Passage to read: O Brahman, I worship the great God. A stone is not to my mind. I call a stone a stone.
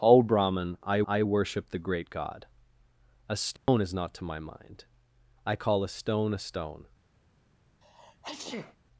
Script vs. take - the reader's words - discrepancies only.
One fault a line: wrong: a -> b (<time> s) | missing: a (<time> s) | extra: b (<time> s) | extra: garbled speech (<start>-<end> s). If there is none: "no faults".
extra: I (1.0 s)